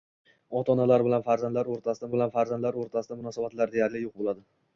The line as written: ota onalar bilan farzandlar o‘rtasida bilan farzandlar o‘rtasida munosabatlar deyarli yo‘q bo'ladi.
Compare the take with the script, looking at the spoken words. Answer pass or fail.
pass